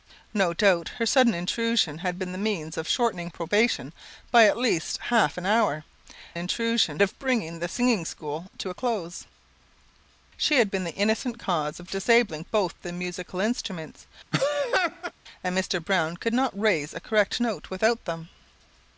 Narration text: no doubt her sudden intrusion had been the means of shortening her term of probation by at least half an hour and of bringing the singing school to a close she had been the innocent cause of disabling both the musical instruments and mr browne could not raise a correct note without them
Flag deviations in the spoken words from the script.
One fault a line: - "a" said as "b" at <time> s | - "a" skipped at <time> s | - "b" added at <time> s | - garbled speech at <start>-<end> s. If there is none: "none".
- "her term of" skipped at 3.3 s
- "and" said as "intrusion" at 6.4 s